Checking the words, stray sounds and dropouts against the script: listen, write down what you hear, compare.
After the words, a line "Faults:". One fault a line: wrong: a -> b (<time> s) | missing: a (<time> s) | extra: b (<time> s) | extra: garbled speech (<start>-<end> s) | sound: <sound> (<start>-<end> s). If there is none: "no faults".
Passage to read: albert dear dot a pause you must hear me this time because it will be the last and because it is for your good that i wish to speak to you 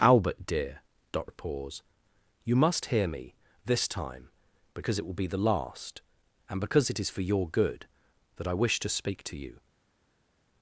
albert dear dot a pause you must hear me this time because it will be the last and because it is for your good that i wish to speak to you
Faults:
no faults